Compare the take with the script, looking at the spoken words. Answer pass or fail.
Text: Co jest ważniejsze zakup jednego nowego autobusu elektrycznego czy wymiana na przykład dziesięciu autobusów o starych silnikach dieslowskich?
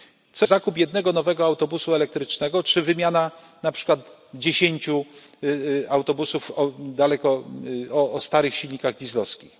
fail